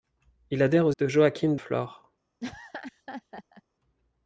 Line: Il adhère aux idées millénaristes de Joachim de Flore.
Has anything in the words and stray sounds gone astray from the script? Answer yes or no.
yes